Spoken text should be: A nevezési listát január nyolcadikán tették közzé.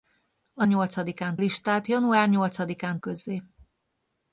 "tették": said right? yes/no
no